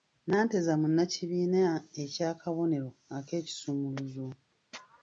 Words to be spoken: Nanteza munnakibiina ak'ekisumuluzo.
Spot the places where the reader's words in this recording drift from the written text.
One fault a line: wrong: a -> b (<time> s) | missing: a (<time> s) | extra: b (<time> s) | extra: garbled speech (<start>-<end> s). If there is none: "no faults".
extra: eky'akabonero (2.0 s)